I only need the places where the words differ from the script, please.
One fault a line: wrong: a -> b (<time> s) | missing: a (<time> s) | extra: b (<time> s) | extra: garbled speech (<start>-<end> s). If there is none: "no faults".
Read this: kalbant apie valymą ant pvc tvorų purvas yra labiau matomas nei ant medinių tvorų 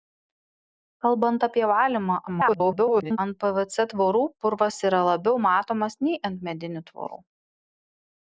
extra: garbled speech (2.3-3.2 s)